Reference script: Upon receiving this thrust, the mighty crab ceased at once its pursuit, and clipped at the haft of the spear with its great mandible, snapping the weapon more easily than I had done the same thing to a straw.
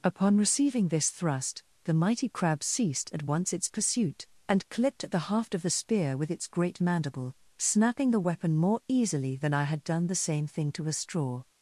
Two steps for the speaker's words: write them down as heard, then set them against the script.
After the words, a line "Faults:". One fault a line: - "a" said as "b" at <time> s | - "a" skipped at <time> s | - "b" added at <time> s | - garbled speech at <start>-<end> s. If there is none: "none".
Upon receiving this thrust, the mighty crab ceased at once its pursuit, and clipped at the haft of the spear with its great mandible, snapping the weapon more easily than I had done the same thing to a straw.
Faults:
none